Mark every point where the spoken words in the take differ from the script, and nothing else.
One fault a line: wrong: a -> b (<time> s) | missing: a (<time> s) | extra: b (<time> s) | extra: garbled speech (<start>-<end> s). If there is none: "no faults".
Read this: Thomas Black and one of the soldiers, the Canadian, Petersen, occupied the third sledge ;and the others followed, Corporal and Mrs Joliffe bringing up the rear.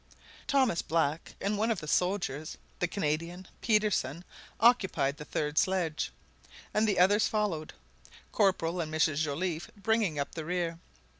no faults